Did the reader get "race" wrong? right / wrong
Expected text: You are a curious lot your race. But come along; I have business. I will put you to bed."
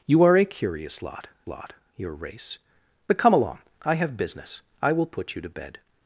right